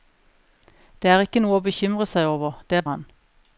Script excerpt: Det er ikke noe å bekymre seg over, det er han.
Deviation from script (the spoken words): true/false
false